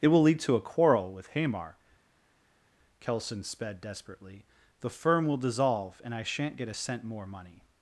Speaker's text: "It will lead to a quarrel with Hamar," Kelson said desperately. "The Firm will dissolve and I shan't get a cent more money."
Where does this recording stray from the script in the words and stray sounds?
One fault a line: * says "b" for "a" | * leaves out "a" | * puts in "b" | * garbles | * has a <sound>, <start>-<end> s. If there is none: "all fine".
* says "sped" for "said"